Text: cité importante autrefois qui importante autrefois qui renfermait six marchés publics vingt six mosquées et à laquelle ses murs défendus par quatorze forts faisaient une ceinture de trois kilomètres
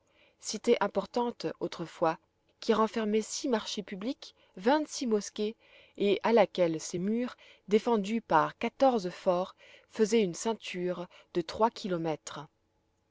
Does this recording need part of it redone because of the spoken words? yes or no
yes